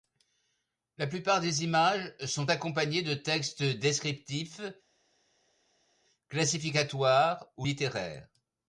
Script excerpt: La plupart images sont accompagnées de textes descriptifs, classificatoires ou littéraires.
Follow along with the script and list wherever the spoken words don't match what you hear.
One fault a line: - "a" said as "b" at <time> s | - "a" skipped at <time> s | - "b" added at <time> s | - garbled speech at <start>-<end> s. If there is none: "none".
- "des" added at 1.4 s